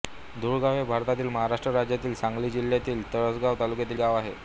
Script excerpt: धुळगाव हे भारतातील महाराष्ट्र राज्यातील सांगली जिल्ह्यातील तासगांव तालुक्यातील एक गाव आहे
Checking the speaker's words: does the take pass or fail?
fail